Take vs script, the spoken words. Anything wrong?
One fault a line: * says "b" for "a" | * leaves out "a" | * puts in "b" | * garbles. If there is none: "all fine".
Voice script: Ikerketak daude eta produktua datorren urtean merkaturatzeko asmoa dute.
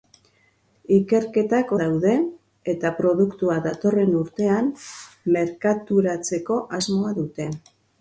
all fine